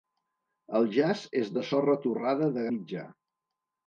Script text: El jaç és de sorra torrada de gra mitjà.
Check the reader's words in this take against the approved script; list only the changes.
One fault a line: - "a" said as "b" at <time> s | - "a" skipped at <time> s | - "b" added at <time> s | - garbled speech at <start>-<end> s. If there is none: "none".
- "gra" skipped at 2.6 s